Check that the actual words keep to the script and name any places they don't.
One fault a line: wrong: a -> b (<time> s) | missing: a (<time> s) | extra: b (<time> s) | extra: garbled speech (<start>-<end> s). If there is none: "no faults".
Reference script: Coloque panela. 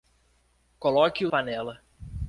no faults